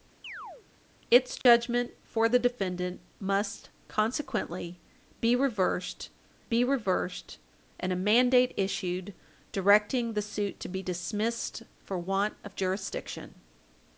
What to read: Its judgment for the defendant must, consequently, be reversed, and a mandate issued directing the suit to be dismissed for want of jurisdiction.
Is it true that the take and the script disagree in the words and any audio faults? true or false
true